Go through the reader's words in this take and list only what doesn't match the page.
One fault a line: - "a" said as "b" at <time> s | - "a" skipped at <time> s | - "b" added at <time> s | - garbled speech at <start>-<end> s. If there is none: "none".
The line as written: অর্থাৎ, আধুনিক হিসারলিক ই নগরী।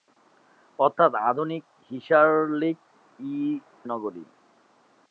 none